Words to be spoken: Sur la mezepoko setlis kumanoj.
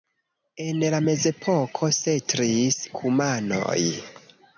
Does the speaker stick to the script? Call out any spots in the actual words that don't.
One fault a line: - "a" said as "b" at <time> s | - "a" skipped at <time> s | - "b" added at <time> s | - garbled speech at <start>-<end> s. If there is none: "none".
- "Sur" said as "En" at 0.6 s